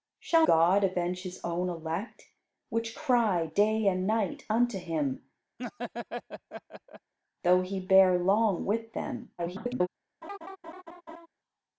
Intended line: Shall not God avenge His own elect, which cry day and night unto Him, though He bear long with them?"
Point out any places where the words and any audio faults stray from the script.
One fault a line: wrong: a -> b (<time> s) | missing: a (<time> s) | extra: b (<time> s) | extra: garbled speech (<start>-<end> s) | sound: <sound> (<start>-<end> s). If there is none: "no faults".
missing: not (0.5 s)
sound: laugh (5.6-7.1 s)
extra: garbled speech (9.4-9.9 s)
sound: laugh (10.2-11.3 s)